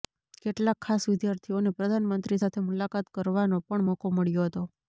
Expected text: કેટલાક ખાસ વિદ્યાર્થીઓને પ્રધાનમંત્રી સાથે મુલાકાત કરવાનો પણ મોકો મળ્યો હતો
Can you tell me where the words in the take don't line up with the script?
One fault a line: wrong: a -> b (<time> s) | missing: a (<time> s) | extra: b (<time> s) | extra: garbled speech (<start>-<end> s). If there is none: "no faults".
no faults